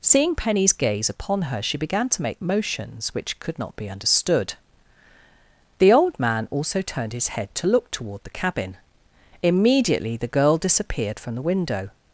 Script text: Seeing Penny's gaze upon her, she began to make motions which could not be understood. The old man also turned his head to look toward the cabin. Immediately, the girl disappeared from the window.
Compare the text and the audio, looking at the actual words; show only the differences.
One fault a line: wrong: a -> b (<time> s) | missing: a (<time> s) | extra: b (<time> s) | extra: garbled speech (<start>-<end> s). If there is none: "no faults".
no faults